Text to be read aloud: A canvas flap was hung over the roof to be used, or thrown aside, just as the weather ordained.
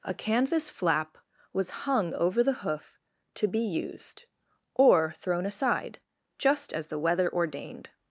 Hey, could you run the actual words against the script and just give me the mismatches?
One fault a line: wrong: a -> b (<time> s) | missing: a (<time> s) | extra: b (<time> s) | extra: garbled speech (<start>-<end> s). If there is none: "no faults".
wrong: roof -> hoof (2.6 s)